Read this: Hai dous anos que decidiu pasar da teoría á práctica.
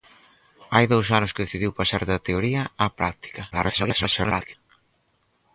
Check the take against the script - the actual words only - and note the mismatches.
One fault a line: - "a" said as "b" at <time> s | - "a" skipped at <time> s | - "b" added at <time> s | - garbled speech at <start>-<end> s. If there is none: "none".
- garbled speech at 3.5-4.5 s